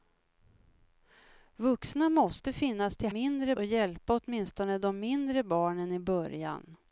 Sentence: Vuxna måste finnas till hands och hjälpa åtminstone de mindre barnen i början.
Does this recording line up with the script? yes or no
no